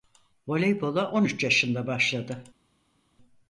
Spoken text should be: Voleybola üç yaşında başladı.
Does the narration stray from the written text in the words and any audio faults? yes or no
yes